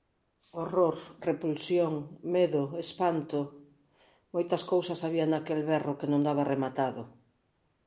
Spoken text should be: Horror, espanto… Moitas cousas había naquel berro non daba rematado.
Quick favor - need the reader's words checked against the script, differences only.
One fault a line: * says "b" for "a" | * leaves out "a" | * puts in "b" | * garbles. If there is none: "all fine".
* puts in "repulsión medo"
* puts in "que"